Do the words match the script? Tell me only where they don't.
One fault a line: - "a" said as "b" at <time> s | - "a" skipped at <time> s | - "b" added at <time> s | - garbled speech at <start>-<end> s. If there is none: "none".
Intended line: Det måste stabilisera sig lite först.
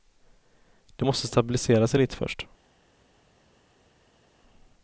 none